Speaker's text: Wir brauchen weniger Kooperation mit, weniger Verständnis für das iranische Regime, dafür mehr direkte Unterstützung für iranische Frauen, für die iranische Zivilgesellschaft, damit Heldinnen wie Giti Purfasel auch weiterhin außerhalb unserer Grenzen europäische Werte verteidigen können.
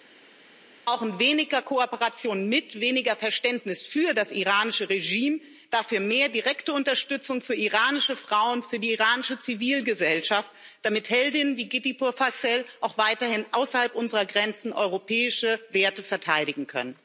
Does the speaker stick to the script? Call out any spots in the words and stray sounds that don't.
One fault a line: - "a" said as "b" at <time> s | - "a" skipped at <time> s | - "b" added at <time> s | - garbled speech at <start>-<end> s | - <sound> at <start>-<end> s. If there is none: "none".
none